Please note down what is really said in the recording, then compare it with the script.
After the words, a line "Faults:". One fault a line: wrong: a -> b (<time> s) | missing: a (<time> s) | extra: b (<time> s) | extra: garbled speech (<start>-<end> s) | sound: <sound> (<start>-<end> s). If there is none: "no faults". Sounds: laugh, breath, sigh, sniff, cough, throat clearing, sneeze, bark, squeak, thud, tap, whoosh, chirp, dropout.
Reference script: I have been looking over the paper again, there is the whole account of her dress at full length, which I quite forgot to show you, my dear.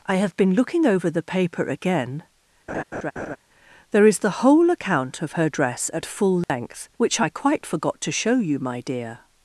I have been looking over the paper again, there is the whole account of her dress at full length, which I quite forgot to show you, my dear.
Faults:
sound: laugh (2.7-3.4 s)
sound: dropout (6.4-6.5 s)